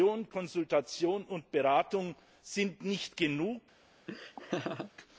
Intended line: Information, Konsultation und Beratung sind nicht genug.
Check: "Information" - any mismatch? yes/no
no